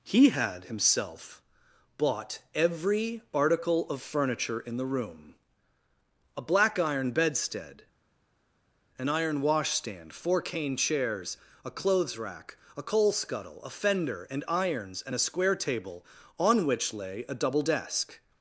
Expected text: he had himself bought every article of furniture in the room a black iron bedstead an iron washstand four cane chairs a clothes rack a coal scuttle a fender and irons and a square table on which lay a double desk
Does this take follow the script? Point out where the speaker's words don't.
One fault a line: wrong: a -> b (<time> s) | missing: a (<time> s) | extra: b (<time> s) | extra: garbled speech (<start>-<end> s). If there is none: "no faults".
no faults